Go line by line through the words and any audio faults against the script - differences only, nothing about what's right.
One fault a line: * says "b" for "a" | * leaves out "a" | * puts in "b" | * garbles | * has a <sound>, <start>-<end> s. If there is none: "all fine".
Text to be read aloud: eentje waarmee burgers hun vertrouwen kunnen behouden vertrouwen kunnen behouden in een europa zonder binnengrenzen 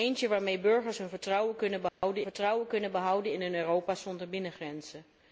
* has a dropout, 1.9-2.0 s